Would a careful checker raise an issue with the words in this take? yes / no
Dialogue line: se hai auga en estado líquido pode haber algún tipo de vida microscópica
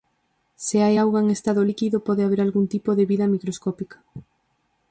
no